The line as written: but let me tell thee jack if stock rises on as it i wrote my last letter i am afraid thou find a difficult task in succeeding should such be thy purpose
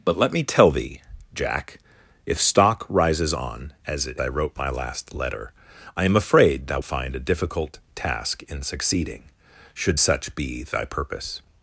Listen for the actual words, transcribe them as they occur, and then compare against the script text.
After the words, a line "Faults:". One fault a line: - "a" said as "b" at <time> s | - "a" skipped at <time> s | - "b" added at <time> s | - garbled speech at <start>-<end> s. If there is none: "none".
but let me tell thee jack if stock rises on as it i wrote my last letter i am afraid thou find a difficult task in succeeding should such be thy purpose
Faults:
none